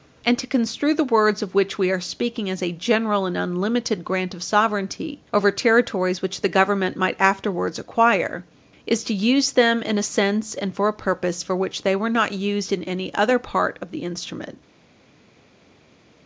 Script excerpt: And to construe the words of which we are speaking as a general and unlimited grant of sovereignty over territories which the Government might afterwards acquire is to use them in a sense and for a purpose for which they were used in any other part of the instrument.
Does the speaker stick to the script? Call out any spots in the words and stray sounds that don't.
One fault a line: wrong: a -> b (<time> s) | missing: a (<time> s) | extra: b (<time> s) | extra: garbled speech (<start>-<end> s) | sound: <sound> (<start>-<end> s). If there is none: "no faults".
extra: not (12.1 s)